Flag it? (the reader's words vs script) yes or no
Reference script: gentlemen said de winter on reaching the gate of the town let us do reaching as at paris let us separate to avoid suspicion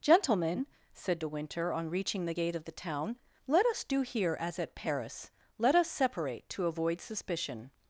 yes